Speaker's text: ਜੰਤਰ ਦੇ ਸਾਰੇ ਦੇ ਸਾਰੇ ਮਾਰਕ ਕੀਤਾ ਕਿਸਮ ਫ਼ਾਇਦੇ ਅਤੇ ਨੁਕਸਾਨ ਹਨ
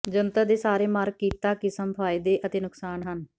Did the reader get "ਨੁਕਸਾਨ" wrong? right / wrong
right